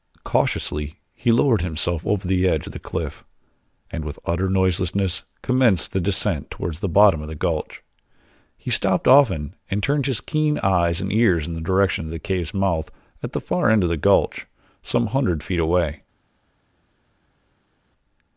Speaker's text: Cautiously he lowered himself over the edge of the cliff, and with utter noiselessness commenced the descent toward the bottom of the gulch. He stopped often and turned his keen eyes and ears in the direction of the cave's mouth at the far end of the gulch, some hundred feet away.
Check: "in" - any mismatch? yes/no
no